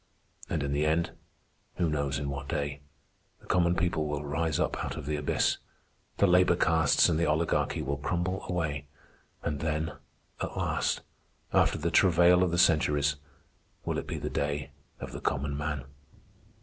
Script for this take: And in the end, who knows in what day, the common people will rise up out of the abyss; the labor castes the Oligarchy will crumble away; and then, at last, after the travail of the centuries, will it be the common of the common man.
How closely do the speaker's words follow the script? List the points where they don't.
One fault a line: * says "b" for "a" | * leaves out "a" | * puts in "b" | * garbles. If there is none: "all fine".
* puts in "and"
* says "day" for "common"